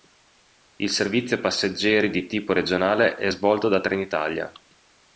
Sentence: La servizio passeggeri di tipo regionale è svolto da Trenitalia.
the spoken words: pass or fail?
fail